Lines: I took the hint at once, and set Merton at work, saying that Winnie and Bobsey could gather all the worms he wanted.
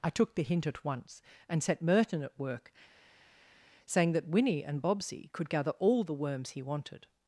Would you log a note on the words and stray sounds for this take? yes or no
no